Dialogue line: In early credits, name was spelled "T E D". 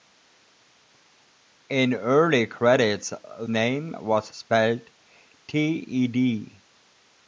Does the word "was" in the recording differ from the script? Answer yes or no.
no